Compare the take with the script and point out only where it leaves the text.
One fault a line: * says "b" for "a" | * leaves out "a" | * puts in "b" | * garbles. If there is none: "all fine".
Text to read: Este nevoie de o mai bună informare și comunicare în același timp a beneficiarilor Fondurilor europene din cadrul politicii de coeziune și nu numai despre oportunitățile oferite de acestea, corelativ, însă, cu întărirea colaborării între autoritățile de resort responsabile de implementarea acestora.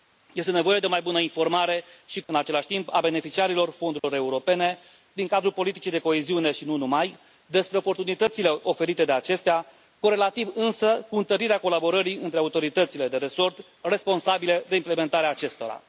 * leaves out "comunicare"